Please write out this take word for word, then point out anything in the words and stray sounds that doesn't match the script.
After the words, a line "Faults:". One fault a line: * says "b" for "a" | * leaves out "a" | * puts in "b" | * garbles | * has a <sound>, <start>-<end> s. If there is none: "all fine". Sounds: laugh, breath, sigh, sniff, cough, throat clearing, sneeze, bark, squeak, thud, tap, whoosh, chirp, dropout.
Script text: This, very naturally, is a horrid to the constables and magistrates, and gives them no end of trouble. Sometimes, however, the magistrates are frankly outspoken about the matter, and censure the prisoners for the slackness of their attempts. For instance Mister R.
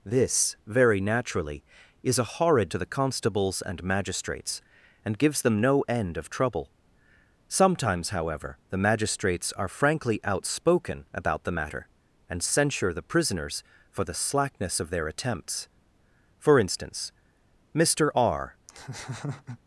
This, very naturally, is a horrid to the constables and magistrates, and gives them no end of trouble. Sometimes, however, the magistrates are frankly outspoken about the matter, and censure the prisoners for the slackness of their attempts. For instance Mister R.
Faults:
* has a laugh, 18.7-19.6 s